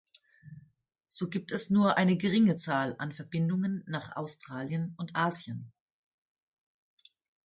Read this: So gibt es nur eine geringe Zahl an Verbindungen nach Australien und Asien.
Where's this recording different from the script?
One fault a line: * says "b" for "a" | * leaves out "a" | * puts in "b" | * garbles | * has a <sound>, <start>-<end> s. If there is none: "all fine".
all fine